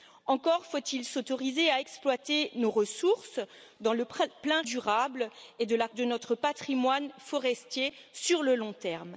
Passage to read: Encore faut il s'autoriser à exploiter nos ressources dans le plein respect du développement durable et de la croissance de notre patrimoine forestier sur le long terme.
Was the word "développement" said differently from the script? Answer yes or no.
yes